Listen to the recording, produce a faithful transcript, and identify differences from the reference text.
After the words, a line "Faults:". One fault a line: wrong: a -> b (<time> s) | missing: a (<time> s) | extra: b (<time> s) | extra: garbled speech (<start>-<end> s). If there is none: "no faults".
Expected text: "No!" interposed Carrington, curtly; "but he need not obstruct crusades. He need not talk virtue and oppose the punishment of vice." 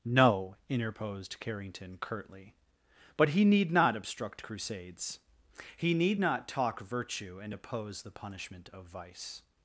"No!" interposed Carrington, curtly; "but he need not obstruct crusades. He need not talk virtue and oppose the punishment of vice."
Faults:
no faults